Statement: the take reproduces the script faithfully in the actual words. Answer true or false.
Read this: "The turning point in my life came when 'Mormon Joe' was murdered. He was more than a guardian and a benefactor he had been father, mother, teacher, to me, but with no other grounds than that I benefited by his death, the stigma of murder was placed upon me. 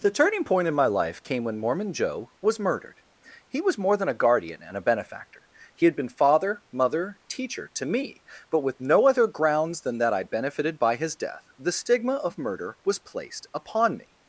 true